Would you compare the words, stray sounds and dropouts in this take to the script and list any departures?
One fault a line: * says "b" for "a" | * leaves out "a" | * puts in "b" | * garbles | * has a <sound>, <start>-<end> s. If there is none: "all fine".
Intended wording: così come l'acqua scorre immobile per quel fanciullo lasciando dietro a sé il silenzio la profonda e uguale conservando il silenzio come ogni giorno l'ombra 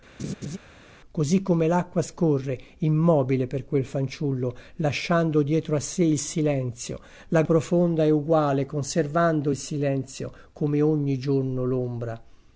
* has a laugh, 0.2-0.6 s